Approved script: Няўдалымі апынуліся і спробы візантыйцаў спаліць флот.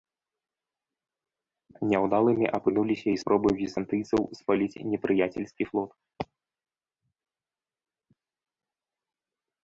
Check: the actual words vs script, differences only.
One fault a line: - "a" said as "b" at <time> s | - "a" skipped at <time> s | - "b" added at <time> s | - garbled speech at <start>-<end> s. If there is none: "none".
- "непрыяцельскі" added at 4.9 s